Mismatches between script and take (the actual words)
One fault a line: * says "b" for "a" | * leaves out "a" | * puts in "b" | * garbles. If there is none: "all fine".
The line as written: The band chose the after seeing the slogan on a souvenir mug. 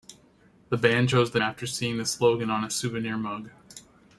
all fine